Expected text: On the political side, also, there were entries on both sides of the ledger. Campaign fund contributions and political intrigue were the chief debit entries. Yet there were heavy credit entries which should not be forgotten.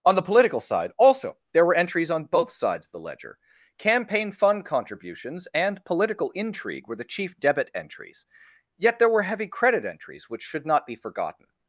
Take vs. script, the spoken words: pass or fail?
pass